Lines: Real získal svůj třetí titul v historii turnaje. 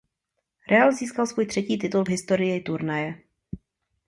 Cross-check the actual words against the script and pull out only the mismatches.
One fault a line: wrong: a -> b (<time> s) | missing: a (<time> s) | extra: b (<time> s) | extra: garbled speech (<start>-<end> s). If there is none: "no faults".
no faults